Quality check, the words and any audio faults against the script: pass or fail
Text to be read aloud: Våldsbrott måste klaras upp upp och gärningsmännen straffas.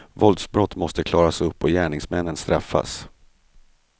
fail